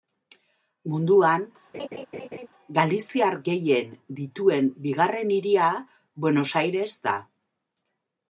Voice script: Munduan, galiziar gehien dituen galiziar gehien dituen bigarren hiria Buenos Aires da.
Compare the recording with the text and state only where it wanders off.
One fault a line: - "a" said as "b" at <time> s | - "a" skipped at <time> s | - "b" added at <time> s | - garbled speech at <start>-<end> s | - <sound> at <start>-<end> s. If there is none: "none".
- laugh at 1.7-2.5 s
- "galiziar gehien dituen" skipped at 4.7 s